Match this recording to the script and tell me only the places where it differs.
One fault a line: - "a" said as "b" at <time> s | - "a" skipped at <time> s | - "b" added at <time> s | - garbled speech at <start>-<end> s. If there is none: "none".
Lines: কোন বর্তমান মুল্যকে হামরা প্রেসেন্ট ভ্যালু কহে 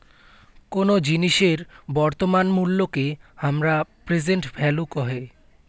- "জিনিসের" added at 1.0 s